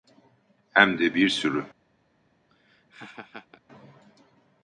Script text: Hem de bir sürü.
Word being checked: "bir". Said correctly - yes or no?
yes